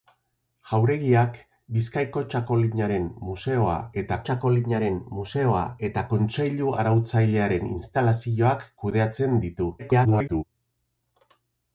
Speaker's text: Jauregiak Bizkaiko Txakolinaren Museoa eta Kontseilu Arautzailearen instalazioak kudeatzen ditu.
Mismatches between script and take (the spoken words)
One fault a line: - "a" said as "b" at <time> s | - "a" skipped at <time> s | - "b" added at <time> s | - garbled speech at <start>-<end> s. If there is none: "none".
- "Txakolinaren Museoa eta" added at 4.3 s
- garbled speech at 9.8-10.4 s